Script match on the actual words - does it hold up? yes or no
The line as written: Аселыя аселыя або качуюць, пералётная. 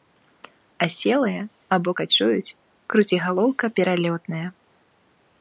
no